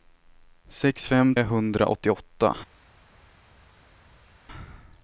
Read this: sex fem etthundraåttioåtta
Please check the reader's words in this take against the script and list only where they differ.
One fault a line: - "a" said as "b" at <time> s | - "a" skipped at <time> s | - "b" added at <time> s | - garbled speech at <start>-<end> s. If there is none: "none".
none